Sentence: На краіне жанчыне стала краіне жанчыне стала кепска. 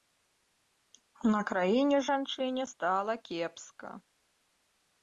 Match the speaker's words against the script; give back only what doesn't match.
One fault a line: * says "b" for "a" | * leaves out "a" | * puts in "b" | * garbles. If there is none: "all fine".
* leaves out "краіне жанчыне стала"